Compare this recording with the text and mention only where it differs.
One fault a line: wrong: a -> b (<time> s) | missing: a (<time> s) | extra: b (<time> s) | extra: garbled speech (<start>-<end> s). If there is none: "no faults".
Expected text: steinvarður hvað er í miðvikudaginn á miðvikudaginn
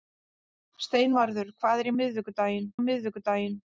no faults